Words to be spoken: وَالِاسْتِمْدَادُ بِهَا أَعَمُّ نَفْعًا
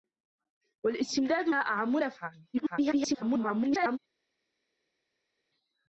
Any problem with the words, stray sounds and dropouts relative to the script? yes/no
yes